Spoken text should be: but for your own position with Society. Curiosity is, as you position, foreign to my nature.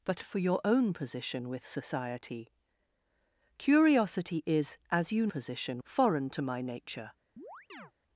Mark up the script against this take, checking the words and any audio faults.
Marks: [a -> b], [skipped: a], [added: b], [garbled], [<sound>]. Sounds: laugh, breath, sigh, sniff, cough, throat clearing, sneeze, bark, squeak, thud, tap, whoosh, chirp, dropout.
but for your own position with Society. Curiosity is, as you position, foreign to my nature. [chirp]